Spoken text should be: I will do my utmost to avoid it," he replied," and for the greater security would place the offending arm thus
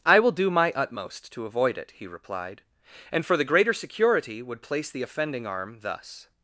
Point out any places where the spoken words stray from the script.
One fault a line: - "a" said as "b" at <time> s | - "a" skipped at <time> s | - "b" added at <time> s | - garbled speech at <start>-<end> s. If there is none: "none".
none